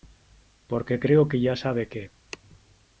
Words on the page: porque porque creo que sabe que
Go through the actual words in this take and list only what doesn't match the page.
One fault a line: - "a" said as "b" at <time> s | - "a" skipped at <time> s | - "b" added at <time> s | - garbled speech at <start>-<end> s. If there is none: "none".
- "porque" skipped at 1.0 s
- "ya" added at 1.4 s